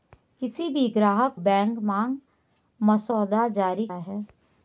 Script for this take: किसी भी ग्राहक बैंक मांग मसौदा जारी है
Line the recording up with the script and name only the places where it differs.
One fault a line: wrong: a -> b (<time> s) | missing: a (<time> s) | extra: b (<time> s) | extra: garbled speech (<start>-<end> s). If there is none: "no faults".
no faults